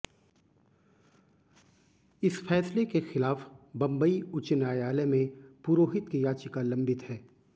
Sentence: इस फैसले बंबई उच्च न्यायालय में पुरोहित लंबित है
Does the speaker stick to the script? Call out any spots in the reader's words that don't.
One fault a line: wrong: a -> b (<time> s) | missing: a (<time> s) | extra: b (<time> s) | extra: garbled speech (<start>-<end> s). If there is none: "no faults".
extra: के खिलाफ (2.9 s)
extra: की याचिका (6.1 s)